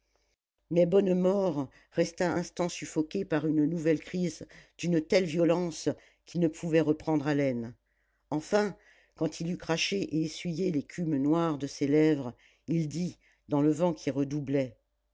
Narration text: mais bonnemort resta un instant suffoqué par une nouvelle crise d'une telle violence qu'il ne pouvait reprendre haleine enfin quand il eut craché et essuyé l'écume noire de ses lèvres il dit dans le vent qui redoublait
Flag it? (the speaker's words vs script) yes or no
yes